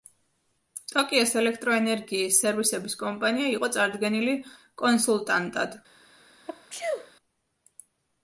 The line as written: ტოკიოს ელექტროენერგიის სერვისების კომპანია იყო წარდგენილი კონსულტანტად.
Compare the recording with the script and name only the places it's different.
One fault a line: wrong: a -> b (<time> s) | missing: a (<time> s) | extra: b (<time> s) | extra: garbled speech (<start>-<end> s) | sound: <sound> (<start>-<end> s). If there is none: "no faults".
sound: sneeze (6.5-7.1 s)